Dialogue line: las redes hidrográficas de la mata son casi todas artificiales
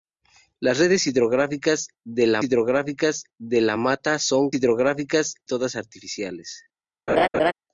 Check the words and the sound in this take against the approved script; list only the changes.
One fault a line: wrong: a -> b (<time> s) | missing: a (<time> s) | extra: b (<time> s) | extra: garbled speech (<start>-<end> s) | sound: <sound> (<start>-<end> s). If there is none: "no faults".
extra: hidrográficas de la (2.4 s)
wrong: casi -> hidrográficas (4.5 s)
sound: laugh (7.1-7.5 s)